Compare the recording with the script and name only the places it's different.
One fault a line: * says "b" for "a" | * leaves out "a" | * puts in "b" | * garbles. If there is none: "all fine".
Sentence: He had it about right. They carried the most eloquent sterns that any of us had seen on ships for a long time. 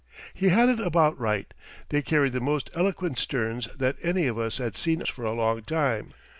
* leaves out "on ships"